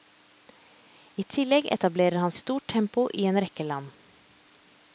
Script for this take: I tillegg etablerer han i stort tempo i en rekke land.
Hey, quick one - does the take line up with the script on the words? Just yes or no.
yes